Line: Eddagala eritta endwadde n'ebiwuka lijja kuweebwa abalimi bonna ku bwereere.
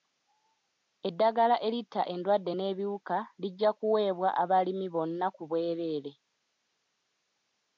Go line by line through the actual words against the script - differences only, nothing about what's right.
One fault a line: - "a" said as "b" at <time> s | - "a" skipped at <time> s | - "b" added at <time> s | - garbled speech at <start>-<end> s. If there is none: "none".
none